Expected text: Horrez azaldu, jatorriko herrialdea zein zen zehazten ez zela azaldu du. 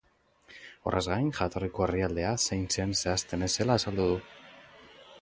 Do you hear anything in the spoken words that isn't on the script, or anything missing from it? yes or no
yes